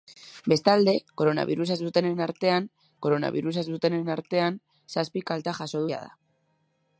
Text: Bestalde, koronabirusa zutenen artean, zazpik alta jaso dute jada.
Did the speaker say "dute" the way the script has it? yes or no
no